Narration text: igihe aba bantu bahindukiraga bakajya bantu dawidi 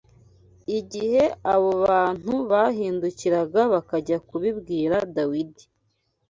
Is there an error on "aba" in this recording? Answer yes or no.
yes